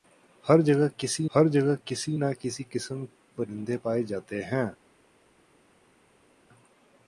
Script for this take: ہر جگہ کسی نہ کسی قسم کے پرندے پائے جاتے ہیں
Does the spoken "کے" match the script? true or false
false